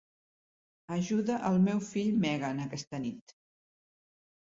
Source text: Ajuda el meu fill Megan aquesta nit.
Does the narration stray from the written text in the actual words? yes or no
no